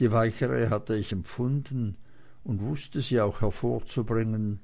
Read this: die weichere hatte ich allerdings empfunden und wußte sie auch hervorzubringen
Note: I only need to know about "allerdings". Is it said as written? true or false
false